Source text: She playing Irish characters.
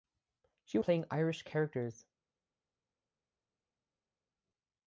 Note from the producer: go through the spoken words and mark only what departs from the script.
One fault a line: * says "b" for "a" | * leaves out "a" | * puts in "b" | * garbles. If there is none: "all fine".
all fine